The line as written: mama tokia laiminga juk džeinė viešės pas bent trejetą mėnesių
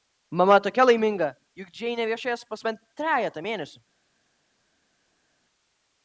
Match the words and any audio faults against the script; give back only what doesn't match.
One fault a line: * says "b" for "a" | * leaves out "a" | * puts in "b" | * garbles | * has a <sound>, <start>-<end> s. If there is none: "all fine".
all fine